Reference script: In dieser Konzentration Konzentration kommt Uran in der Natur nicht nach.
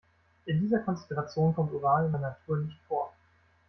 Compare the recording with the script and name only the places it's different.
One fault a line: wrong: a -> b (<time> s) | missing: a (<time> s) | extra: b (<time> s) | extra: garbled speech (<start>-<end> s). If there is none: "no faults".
missing: Konzentration (1.6 s)
wrong: nach -> vor (2.9 s)